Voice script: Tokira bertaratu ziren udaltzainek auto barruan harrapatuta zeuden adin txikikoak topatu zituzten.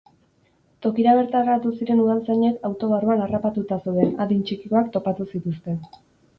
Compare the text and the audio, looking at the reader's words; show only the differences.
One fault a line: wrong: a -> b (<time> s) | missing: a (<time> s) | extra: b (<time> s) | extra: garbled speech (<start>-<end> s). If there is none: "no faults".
no faults